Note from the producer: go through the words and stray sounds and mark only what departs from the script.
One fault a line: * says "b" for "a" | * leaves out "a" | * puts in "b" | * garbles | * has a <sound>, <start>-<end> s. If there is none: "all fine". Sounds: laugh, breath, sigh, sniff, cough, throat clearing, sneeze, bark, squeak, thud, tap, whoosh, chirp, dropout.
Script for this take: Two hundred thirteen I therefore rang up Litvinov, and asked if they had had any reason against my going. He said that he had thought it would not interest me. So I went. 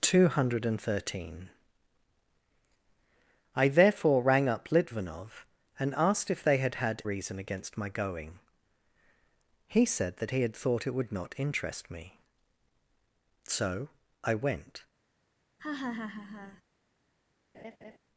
* leaves out "any"
* has a laugh, 15.6-16.6 s
* has a laugh, 17.5-18.0 s